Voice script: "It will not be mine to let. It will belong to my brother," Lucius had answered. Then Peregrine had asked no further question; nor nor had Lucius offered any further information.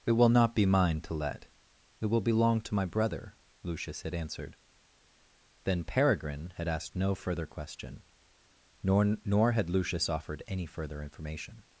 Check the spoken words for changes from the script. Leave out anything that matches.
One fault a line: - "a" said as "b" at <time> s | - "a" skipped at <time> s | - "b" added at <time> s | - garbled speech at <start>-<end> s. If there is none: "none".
none